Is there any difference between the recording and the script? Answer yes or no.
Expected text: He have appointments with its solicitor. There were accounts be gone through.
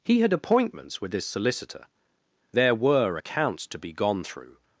yes